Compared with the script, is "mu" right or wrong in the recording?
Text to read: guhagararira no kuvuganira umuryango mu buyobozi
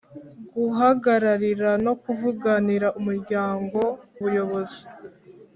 wrong